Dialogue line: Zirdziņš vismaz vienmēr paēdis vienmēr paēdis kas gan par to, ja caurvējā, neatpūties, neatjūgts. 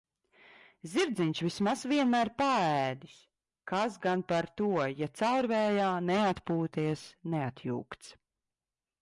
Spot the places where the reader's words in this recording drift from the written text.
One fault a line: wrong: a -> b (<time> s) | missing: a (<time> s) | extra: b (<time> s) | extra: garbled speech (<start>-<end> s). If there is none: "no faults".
missing: vienmēr paēdis (3.2 s)